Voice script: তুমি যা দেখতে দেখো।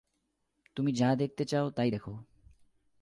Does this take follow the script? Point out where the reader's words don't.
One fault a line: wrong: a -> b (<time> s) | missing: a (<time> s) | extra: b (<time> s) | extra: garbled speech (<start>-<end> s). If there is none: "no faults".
extra: চাও তাই (1.4 s)